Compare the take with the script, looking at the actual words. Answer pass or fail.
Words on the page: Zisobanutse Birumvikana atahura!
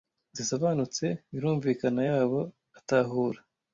fail